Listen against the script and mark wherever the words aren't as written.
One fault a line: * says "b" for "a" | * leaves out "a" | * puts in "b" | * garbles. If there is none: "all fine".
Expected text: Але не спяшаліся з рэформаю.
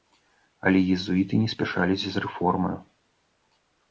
* puts in "езуіты"